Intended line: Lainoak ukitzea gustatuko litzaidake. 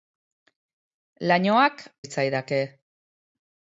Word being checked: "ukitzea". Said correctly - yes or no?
no